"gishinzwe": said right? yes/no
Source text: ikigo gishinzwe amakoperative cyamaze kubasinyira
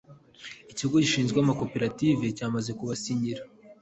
yes